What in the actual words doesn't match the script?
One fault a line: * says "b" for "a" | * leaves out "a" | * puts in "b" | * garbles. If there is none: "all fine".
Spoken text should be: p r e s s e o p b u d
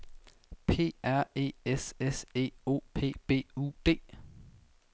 all fine